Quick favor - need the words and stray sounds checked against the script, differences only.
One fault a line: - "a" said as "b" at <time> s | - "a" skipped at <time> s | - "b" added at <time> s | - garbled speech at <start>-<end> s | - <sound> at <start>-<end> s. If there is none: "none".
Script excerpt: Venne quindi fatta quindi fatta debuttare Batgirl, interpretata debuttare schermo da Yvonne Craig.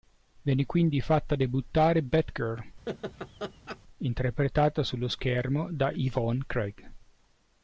- "quindi fatta" skipped at 1.4 s
- laugh at 2.9-3.8 s
- "debuttare" said as "sullo" at 4.8 s